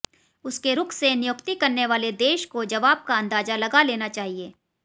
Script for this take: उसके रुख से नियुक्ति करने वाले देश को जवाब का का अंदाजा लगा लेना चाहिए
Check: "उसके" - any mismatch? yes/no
no